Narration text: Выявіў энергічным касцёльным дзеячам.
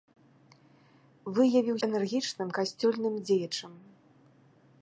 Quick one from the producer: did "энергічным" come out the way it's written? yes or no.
yes